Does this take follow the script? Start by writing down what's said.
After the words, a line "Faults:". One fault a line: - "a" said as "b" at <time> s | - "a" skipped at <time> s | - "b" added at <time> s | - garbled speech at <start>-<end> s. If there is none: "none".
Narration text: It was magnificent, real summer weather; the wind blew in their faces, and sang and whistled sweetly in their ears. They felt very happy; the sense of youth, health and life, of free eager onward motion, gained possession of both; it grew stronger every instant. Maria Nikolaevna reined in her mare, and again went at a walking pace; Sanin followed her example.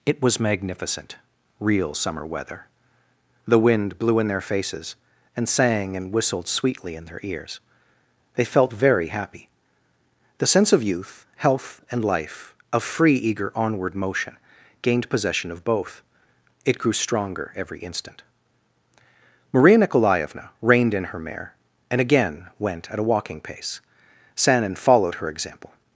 It was magnificent, real summer weather; the wind blew in their faces, and sang and whistled sweetly in their ears. They felt very happy; the sense of youth, health and life, of free eager onward motion, gained possession of both; it grew stronger every instant. Maria Nikolaevna reined in her mare, and again went at a walking pace; Sanin followed her example.
Faults:
none